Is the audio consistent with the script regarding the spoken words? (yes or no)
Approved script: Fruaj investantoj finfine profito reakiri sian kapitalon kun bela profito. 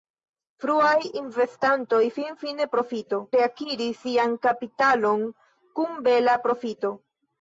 yes